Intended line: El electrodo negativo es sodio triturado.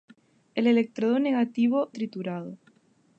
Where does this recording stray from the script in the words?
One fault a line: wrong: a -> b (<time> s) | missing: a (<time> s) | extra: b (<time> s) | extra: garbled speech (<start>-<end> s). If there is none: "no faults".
missing: es sodio (1.9 s)